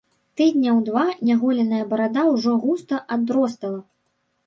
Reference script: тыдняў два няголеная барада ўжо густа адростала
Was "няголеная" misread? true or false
false